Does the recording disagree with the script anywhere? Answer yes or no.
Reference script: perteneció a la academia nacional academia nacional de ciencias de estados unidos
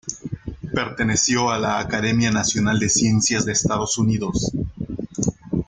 yes